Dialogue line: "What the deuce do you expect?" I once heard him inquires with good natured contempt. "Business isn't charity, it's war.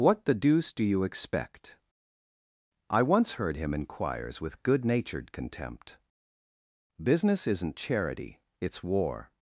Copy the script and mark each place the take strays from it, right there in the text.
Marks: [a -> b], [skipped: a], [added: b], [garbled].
"What the deuce do you expect?" I once heard him inquires with good natured contempt. "Business isn't charity, it's war.